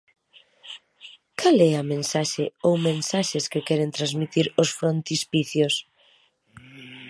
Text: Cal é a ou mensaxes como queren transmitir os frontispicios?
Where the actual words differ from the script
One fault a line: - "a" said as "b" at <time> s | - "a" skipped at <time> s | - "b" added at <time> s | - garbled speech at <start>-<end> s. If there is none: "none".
- "mensaxe" added at 1.9 s
- "como" said as "que" at 3.5 s